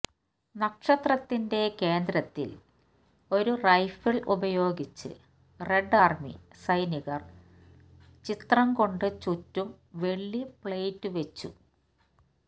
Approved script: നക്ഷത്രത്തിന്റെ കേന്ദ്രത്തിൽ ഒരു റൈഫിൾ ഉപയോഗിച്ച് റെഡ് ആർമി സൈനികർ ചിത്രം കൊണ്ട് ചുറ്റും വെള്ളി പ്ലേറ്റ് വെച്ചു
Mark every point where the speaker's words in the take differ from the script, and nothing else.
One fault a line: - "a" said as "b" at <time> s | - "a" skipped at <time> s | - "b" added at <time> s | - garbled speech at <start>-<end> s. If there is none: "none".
none